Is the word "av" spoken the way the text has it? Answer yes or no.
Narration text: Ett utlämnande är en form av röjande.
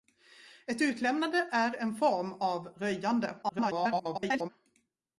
yes